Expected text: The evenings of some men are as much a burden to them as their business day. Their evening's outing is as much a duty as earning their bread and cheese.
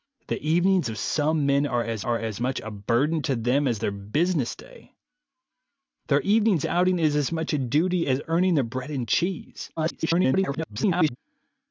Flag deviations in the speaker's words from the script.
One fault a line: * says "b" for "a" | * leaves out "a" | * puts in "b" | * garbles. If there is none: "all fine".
* puts in "are as"
* garbles